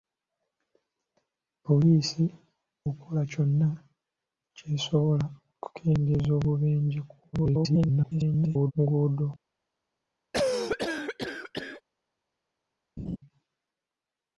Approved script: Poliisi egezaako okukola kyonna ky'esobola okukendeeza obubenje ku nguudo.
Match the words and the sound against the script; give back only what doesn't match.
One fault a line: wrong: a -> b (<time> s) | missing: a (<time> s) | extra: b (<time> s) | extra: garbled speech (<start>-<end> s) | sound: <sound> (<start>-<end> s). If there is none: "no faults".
missing: egezaako (2.2 s)
extra: garbled speech (7.3-8.7 s)
sound: cough (10.3-11.8 s)
sound: laugh (13.0-13.2 s)